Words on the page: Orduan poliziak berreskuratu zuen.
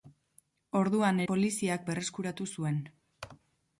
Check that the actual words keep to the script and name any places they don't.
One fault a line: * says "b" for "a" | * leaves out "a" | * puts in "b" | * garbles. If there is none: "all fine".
all fine